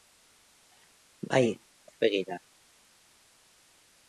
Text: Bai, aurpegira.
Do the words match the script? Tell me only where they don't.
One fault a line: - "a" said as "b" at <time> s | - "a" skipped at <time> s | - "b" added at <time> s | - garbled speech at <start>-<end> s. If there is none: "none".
none